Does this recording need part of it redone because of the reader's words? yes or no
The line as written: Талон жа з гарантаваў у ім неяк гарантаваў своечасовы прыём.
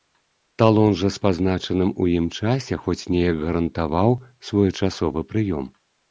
yes